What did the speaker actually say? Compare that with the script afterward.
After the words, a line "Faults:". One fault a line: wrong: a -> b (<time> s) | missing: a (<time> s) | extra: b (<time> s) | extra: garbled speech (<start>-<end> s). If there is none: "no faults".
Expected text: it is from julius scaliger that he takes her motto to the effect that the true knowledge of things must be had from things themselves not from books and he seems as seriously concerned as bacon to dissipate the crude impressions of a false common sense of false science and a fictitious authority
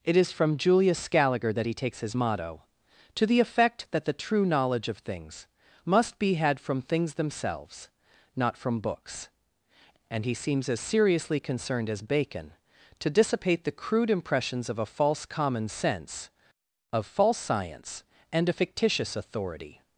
it is from julius scaliger that he takes his motto to the effect that the true knowledge of things must be had from things themselves not from books and he seems as seriously concerned as bacon to dissipate the crude impressions of a false common sense of false science and a fictitious authority
Faults:
wrong: her -> his (2.0 s)